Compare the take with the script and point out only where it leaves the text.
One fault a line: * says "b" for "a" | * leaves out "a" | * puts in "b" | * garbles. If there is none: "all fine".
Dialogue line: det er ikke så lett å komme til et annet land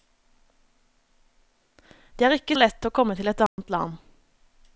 * leaves out "så"